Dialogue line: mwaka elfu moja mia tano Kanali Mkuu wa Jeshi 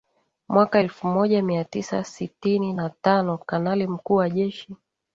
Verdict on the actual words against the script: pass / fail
fail